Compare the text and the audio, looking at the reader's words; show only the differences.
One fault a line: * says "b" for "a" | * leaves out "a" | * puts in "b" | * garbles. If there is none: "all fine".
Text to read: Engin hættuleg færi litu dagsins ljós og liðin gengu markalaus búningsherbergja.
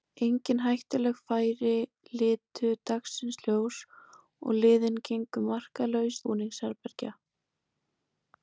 all fine